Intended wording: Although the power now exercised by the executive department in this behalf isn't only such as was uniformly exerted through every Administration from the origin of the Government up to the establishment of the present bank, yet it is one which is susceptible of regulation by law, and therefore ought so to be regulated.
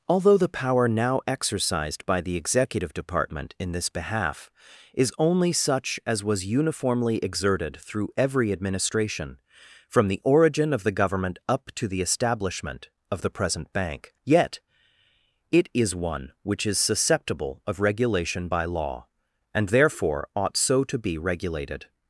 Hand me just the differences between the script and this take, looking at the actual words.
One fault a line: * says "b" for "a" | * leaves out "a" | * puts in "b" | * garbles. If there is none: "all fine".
* says "is" for "isn't"